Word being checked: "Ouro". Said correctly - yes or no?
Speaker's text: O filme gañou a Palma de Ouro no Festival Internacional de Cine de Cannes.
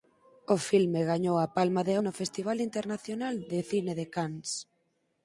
no